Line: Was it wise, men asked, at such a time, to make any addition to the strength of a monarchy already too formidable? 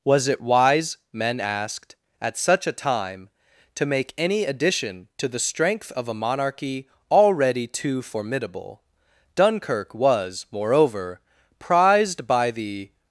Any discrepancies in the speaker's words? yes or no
yes